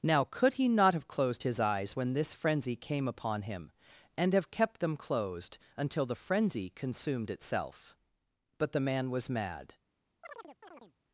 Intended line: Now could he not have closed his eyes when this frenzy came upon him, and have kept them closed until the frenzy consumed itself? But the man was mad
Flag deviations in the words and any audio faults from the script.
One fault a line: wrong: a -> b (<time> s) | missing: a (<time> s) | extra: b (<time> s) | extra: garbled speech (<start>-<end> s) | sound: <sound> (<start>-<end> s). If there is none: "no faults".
sound: chirp (10.2-10.9 s)